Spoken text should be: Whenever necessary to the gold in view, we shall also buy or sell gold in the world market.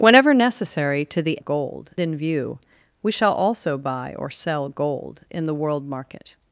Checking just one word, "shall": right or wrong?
right